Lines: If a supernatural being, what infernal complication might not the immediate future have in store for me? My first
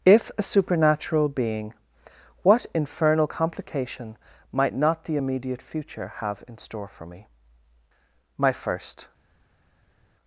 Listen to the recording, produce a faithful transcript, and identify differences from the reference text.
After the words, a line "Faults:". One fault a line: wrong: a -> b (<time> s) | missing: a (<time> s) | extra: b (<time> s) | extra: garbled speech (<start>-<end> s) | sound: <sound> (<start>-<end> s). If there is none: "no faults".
If a supernatural being, what infernal complication might not the immediate future have in store for me? My first
Faults:
no faults